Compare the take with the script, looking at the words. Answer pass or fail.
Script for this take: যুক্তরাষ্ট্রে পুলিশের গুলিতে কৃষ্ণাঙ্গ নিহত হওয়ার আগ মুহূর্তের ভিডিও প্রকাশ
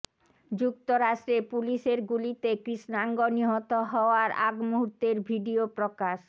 pass